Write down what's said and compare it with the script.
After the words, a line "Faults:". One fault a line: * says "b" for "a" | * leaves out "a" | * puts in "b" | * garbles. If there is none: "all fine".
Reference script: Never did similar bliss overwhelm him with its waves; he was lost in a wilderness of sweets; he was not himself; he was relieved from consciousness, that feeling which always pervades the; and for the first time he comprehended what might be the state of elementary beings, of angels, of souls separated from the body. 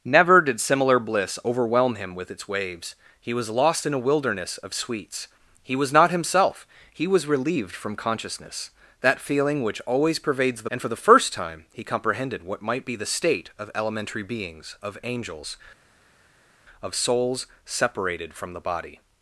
Never did similar bliss overwhelm him with its waves; he was lost in a wilderness of sweets; he was not himself; he was relieved from consciousness, that feeling which always pervades the; and for the first time he comprehended what might be the state of elementary beings, of angels, of souls separated from the body.
Faults:
all fine